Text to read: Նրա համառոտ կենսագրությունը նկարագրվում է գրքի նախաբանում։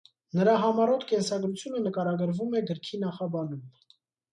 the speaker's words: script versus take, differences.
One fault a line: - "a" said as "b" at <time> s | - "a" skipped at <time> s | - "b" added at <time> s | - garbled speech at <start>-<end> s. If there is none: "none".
none